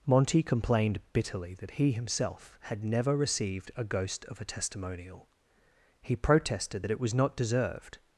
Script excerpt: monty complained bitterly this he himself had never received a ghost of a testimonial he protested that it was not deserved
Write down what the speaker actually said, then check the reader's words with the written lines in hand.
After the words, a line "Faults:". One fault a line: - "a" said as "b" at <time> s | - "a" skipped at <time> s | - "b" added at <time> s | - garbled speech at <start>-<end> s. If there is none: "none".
monty complained bitterly that he himself had never received a ghost of a testimonial he protested that it was not deserved
Faults:
- "this" said as "that" at 1.6 s